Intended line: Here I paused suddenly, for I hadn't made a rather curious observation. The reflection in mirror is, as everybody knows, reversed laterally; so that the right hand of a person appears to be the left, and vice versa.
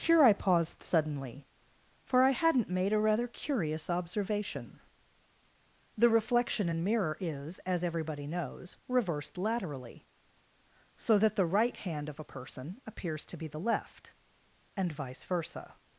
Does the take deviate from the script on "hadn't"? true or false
false